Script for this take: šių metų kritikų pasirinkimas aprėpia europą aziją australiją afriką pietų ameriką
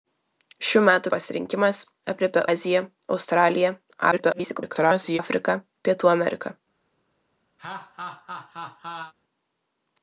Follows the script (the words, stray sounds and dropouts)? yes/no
no